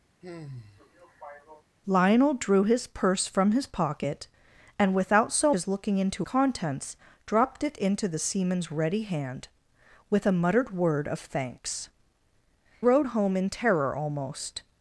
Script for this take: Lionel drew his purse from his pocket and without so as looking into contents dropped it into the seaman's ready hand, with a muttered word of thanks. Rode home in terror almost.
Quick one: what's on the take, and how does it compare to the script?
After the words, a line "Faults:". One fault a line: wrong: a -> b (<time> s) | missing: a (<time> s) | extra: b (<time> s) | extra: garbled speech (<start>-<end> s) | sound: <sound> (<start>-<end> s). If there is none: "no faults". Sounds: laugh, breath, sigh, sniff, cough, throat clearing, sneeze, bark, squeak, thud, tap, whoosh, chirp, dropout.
Lionel drew his purse from his pocket and without so as looking into contents dropped it into the seaman's ready hand, with a muttered word of thanks. Rode home in terror almost.
Faults:
sound: sigh (0.2-1.6 s)